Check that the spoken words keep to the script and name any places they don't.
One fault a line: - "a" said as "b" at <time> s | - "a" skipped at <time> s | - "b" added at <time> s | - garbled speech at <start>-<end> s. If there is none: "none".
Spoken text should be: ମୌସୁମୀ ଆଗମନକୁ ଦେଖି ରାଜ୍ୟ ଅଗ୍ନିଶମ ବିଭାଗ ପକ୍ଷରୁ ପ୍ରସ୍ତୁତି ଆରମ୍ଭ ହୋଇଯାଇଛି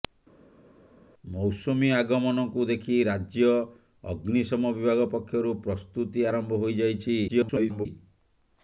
- garbled speech at 7.3-7.9 s